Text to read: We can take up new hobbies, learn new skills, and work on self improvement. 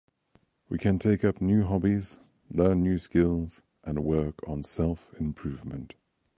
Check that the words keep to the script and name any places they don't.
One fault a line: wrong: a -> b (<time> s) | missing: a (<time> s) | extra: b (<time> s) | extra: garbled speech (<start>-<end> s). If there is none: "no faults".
no faults